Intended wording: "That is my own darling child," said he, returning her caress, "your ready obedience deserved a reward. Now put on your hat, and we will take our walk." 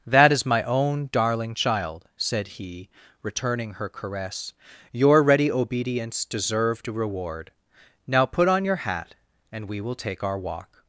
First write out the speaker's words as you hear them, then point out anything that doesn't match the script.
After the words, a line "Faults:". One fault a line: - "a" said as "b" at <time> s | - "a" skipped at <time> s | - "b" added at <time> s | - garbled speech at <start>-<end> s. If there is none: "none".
"That is my own darling child," said he, returning her caress, "your ready obedience deserved a reward. Now put on your hat, and we will take our walk."
Faults:
none